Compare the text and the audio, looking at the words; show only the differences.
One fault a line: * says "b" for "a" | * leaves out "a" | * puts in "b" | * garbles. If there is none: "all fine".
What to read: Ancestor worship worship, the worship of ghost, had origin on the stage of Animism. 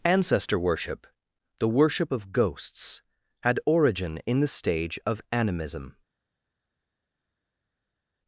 * leaves out "worship"
* says "ghosts" for "ghost"
* says "in" for "on"